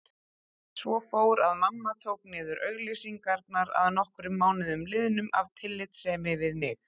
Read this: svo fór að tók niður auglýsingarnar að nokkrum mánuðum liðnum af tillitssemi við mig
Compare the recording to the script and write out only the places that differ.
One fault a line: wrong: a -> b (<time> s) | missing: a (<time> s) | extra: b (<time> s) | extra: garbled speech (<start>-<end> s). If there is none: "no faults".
extra: mamma (1.6 s)